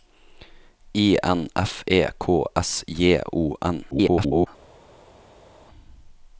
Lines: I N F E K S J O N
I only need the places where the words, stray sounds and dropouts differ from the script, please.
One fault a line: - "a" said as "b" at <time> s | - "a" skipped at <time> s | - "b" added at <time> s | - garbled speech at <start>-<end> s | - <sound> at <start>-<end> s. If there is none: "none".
- garbled speech at 3.9-4.5 s